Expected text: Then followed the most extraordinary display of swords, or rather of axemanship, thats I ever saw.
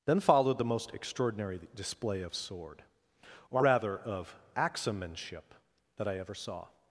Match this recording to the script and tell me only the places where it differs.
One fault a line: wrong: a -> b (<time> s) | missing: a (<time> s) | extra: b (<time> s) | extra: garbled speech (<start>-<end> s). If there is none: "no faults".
wrong: swords -> sword (2.3 s)
wrong: thats -> that (6.0 s)